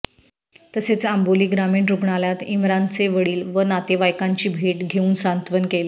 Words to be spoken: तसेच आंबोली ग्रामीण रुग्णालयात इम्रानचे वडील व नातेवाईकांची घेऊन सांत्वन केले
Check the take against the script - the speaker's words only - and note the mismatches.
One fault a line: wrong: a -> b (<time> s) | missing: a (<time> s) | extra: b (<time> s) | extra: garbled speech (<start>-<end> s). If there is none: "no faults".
extra: भेट (4.5 s)